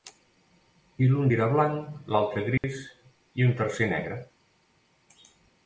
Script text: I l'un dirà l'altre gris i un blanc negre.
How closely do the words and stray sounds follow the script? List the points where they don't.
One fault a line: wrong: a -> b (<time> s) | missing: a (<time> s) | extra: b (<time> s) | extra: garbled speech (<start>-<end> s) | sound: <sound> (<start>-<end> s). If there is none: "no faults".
extra: blanc (1.5 s)
sound: dropout (2.6-2.6 s)
wrong: blanc -> tercer (3.6 s)